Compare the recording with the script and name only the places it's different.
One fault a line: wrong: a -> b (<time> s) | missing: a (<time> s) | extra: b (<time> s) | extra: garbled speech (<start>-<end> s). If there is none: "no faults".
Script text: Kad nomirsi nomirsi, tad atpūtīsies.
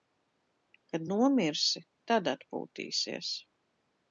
missing: nomirsi (1.8 s)